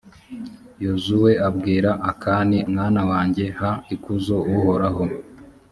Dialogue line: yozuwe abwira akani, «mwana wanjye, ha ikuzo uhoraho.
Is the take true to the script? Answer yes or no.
yes